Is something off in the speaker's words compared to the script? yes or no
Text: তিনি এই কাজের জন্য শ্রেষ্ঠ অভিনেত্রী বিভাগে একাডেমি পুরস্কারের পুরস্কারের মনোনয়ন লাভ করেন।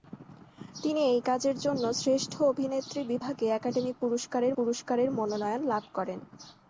no